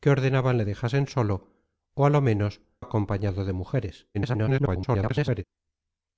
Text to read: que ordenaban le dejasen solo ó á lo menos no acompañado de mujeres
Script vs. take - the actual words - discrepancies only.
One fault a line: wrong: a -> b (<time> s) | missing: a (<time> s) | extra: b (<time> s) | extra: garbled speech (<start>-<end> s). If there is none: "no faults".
missing: no (2.5 s)
extra: garbled speech (4.1-5.4 s)